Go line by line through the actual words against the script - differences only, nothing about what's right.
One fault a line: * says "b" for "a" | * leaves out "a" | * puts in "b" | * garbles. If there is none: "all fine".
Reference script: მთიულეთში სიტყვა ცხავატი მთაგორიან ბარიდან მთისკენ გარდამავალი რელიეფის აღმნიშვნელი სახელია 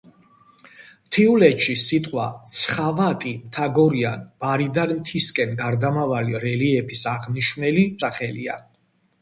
all fine